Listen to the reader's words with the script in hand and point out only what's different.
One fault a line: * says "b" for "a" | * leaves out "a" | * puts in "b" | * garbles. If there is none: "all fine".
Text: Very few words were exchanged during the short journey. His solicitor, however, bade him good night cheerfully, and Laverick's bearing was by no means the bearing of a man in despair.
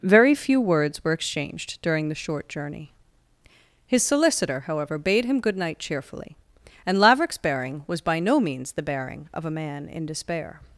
all fine